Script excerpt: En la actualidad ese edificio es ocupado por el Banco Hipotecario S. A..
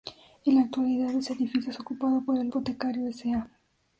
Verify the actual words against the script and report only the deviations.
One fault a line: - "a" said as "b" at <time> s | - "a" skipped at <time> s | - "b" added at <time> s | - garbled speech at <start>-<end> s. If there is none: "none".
- "Banco" skipped at 2.5 s